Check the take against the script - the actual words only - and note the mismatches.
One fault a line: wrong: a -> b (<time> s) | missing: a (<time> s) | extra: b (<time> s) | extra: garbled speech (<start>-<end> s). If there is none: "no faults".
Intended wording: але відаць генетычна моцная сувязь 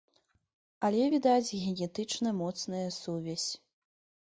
no faults